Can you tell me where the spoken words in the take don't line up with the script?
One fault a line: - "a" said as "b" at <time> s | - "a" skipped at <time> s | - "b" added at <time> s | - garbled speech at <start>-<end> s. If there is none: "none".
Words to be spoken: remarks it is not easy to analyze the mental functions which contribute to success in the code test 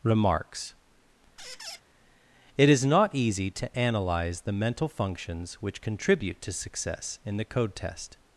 none